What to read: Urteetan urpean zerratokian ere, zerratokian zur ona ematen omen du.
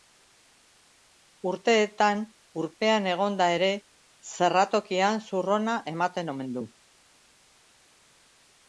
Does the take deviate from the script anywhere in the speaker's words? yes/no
yes